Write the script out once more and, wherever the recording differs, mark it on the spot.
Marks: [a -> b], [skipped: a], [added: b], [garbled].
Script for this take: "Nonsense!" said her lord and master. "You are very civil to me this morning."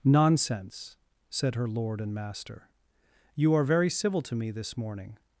"Nonsense!" said her lord and master. "You are very civil to me this morning."